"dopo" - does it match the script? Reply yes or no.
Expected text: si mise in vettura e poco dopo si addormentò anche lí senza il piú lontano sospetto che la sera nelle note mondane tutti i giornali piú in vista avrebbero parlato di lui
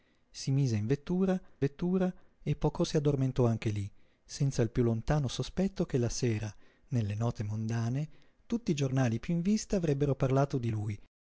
no